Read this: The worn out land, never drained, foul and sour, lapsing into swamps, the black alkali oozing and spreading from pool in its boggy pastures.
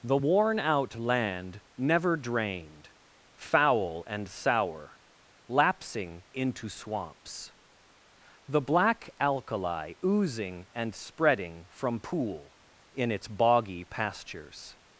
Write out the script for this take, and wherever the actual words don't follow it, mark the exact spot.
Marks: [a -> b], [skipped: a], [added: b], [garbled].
The worn out land, never drained, foul and sour, lapsing into swamps, the black alkali oozing and spreading from pool in its boggy pastures.